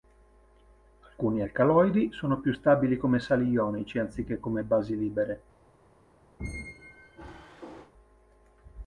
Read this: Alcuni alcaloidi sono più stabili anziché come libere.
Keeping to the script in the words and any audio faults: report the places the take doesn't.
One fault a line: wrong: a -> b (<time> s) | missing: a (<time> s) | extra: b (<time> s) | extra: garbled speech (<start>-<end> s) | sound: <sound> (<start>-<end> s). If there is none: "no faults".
extra: come sali ionici (3.0 s)
extra: basi (4.6 s)
sound: squeak (6.4-7.9 s)